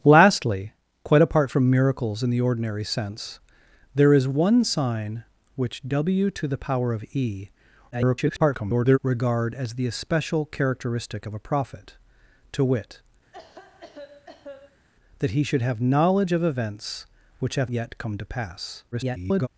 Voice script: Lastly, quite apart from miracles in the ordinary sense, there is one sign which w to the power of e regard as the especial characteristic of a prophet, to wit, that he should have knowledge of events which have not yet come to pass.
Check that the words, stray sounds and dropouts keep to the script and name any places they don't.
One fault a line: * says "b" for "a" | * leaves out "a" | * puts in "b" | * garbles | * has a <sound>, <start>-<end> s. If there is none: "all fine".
* garbles
* has a cough, 13.3-14.9 s
* leaves out "not"
* garbles